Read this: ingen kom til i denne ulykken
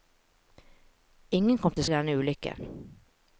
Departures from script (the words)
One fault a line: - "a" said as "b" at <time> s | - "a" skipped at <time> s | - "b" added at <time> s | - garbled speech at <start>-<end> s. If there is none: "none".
none